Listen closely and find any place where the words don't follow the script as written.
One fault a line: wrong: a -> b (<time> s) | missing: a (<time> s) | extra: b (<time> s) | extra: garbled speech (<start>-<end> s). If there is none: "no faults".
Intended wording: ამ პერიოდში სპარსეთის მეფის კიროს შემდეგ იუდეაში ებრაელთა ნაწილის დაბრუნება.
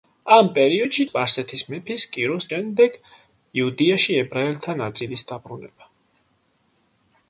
no faults